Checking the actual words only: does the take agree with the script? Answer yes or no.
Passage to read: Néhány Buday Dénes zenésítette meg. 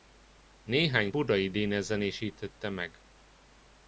yes